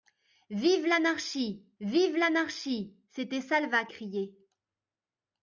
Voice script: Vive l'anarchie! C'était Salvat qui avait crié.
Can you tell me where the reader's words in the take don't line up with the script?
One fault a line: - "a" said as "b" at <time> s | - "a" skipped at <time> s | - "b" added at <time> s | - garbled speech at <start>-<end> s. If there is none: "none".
- "vive l'anarchie" added at 1.8 s
- "qui avait" skipped at 3.9 s